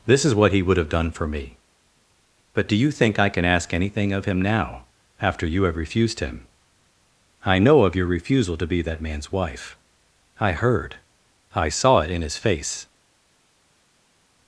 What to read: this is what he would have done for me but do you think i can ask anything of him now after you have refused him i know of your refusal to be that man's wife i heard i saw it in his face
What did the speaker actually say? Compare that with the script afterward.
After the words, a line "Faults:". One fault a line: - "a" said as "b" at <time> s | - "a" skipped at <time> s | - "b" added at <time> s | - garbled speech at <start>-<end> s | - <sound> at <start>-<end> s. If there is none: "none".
this is what he would have done for me but do you think i can ask anything of him now after you have refused him i know of your refusal to be that man's wife i heard i saw it in his face
Faults:
none